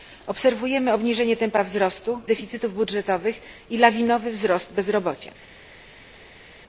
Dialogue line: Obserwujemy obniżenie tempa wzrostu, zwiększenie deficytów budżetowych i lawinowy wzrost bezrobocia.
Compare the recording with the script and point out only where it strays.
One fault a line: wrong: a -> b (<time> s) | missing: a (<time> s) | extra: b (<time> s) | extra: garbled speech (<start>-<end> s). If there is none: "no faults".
missing: zwiększenie (2.2 s)